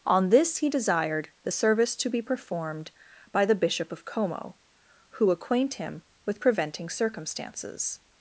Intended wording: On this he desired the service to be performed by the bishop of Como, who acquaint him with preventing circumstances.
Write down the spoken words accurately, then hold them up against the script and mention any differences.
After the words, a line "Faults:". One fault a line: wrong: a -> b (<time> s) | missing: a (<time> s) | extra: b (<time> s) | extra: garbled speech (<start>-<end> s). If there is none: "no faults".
On this he desired the service to be performed by the bishop of Como, who acquaint him with preventing circumstances.
Faults:
no faults